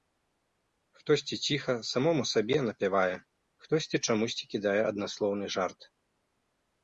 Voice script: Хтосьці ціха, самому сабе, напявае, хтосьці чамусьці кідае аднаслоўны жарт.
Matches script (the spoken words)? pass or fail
pass